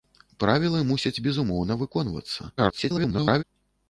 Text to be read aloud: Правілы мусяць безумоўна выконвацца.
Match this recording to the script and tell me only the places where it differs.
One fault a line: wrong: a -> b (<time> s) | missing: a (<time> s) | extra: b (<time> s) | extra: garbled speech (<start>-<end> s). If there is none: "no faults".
extra: garbled speech (2.6-3.4 s)